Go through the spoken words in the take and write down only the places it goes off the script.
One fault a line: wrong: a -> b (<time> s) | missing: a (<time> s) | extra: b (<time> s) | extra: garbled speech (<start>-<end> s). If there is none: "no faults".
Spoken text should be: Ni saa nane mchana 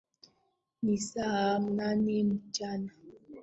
no faults